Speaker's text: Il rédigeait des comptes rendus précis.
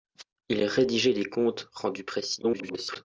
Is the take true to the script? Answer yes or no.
no